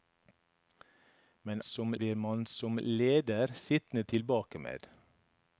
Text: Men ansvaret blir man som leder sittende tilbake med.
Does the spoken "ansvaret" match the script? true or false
false